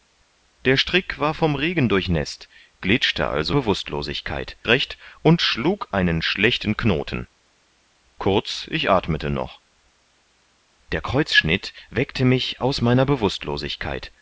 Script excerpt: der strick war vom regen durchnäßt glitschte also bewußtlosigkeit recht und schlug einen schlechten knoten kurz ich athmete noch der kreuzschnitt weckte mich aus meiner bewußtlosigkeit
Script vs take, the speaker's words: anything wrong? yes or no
no